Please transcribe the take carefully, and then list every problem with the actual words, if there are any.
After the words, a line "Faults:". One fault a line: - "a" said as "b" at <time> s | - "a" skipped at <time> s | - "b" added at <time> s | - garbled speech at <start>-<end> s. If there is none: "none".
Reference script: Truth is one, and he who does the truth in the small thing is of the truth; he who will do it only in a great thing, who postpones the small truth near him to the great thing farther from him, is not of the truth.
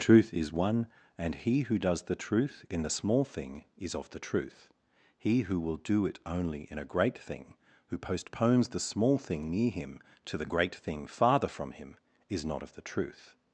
Truth is one, and he who does the truth in the small thing is of the truth; he who will do it only in a great thing, who postpones the small thing near him to the great thing farther from him, is not of the truth.
Faults:
- "truth" said as "thing" at 9.2 s